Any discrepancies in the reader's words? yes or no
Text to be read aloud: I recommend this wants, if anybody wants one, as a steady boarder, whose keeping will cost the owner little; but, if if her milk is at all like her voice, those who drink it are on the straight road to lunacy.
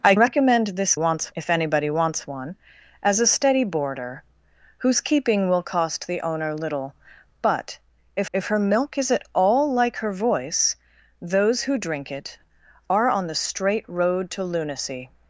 no